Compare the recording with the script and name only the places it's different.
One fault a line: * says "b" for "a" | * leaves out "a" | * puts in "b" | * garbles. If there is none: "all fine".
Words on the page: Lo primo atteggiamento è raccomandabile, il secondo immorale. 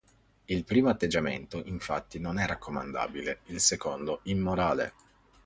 * says "Il" for "Lo"
* puts in "infatti non"